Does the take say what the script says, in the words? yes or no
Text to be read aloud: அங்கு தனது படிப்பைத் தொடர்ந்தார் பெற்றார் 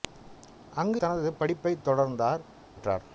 yes